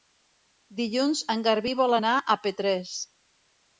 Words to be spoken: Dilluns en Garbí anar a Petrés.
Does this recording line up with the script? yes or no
no